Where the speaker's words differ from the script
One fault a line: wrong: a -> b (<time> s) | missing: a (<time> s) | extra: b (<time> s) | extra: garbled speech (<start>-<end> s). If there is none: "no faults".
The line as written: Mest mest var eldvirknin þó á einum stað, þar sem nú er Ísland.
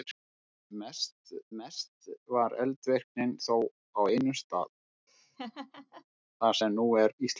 no faults